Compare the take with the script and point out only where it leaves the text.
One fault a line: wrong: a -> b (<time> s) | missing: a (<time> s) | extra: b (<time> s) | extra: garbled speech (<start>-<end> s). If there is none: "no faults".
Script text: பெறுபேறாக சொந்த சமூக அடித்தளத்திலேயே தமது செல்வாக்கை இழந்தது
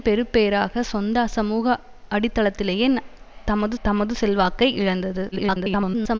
extra: தமது (3.8 s)
extra: garbled speech (5.3-6.2 s)